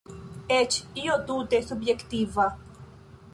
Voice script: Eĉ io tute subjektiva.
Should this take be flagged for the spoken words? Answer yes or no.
no